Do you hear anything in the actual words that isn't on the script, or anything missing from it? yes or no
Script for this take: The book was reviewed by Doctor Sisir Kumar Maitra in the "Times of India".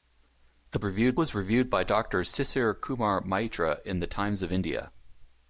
yes